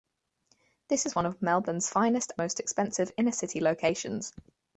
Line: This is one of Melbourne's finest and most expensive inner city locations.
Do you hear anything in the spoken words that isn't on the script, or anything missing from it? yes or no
yes